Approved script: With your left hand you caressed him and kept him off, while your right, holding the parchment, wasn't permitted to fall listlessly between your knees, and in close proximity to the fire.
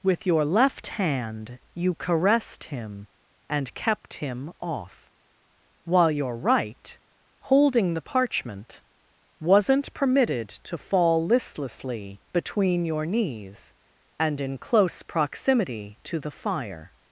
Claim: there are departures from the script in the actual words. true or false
false